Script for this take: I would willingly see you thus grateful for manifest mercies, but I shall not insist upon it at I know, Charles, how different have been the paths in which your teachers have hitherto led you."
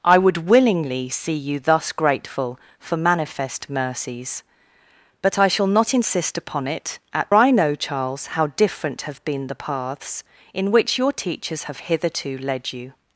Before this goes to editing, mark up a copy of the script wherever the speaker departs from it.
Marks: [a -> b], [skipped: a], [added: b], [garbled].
I would willingly see you thus grateful for manifest mercies, but I shall not insist upon it at I know, Charles, how different have been the paths in which your teachers have hitherto led you."